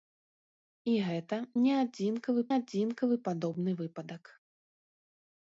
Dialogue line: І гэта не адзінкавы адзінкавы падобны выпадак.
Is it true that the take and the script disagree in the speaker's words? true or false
false